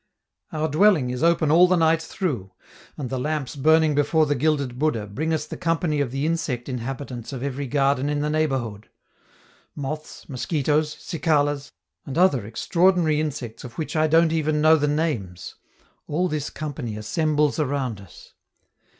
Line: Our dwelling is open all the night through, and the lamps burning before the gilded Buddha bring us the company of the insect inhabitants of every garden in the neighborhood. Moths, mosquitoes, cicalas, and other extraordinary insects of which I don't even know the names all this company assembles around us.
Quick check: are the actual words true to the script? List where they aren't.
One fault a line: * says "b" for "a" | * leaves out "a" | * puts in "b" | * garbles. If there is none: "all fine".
all fine